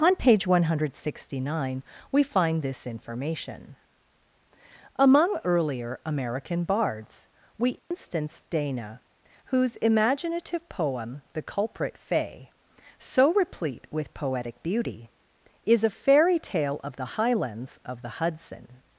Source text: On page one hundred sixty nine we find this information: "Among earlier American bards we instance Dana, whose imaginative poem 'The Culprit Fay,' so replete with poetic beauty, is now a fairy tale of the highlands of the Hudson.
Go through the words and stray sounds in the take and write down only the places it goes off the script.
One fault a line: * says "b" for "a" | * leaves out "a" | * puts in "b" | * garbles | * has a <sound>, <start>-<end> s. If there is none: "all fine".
* has a dropout, 7.8-7.9 s
* leaves out "now"